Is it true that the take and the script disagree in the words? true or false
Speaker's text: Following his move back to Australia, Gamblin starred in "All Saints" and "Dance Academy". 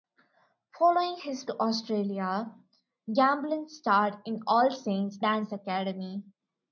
true